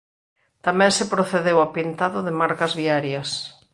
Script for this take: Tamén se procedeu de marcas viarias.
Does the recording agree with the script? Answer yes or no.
no